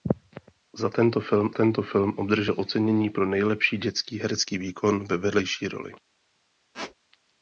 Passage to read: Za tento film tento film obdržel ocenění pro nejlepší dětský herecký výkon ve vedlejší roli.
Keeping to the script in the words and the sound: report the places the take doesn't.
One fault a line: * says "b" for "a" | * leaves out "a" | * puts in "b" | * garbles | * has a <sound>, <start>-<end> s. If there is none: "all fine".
* has a squeak, 6.7-6.9 s